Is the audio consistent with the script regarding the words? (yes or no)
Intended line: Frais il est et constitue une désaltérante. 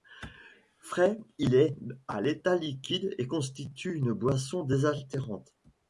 no